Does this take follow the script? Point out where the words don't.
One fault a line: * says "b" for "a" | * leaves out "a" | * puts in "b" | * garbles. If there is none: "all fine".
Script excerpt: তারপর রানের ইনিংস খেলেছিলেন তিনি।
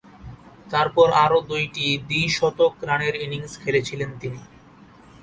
* puts in "আরও দুইটি দ্বি-শতক"